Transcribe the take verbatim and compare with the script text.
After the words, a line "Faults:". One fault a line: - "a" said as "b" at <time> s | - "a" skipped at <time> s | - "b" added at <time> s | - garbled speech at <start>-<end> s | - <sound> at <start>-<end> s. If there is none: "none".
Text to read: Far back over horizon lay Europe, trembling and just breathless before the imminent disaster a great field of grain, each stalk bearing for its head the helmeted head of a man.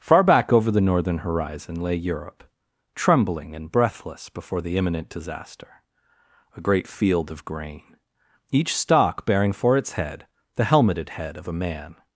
Far back over the northern horizon lay Europe, trembling and breathless before the imminent disaster a great field of grain, each stalk bearing for its head the helmeted head of a man.
Faults:
- "the northern" added at 0.7 s
- "just" skipped at 3.7 s